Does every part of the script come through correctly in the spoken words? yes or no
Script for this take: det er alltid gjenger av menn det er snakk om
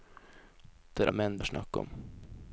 no